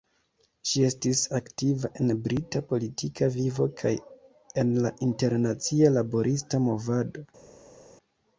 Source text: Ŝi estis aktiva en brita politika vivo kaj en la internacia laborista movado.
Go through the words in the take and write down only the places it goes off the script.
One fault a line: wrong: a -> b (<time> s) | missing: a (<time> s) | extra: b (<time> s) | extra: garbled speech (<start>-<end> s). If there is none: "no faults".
no faults